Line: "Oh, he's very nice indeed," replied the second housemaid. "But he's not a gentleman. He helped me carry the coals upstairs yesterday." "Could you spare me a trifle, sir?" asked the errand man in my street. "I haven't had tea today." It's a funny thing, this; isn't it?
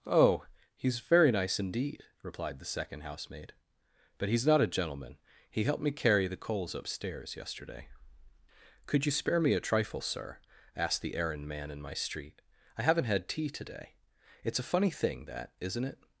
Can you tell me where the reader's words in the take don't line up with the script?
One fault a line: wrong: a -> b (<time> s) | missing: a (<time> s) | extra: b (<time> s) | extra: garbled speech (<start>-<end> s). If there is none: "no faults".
wrong: this -> that (15.2 s)